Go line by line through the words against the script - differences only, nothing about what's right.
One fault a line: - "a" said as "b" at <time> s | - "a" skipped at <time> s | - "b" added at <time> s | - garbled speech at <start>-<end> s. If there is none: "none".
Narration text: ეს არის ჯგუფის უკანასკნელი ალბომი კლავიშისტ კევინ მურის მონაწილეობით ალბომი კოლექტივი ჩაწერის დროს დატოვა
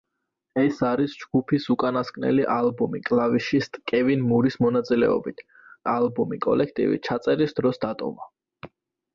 none